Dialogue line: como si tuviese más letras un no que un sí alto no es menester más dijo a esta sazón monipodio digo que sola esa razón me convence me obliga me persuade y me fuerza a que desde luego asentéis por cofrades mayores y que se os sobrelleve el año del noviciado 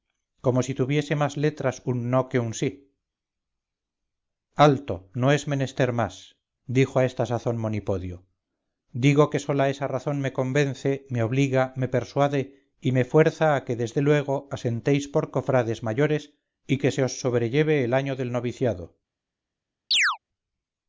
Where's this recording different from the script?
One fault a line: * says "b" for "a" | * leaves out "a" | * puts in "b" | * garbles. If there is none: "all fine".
all fine